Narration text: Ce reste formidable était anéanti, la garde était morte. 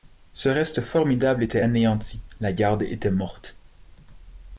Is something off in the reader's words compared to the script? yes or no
no